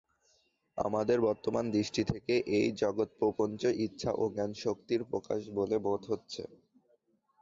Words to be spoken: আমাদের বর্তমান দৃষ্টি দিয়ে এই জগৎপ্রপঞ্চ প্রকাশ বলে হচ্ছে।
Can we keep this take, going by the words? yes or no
no